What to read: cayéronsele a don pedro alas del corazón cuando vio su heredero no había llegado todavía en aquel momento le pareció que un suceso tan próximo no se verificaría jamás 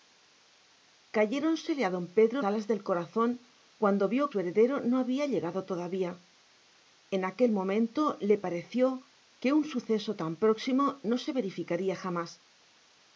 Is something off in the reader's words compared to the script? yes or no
no